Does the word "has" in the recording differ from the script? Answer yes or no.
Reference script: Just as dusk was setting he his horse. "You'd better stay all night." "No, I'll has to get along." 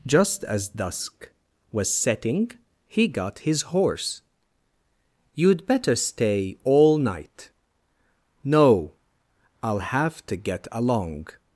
yes